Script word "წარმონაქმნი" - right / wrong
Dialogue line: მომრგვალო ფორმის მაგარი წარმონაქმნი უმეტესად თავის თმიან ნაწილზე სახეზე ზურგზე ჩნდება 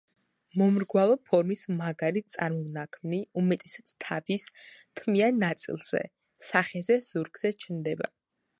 right